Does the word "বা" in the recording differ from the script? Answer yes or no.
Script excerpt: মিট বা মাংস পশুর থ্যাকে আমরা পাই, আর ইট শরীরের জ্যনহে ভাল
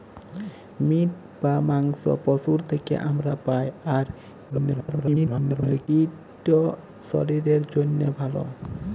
no